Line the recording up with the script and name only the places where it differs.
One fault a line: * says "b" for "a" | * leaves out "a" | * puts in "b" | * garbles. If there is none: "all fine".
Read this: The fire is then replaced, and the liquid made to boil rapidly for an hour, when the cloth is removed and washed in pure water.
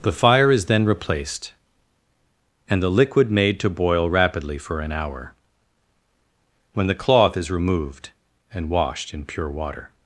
all fine